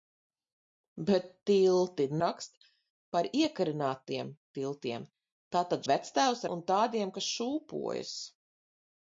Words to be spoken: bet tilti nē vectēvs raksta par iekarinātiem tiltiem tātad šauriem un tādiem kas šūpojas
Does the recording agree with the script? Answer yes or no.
no